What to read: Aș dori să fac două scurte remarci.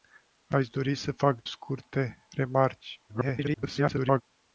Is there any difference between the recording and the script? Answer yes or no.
yes